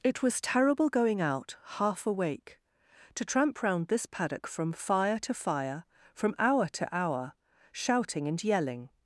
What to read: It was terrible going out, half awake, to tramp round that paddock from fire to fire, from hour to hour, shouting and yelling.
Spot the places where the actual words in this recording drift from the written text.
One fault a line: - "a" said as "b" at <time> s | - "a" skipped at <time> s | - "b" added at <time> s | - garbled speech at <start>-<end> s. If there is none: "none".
- "that" said as "this" at 3.9 s